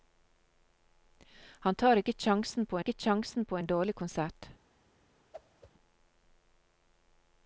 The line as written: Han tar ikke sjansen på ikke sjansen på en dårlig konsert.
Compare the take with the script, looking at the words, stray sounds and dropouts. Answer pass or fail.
fail